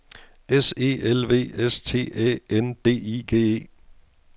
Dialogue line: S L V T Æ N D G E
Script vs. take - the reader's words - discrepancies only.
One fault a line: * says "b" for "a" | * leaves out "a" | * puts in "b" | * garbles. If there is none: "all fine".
* puts in "E"
* puts in "S"
* puts in "I"